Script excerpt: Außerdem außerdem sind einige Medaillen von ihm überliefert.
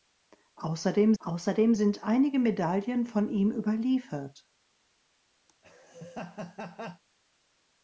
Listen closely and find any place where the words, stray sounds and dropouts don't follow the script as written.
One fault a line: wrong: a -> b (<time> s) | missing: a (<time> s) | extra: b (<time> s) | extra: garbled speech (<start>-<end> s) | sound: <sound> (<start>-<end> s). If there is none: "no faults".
sound: laugh (5.5-7.0 s)